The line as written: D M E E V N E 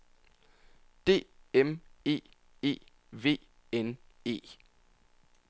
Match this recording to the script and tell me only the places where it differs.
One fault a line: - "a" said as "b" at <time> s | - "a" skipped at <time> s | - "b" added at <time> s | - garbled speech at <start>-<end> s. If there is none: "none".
none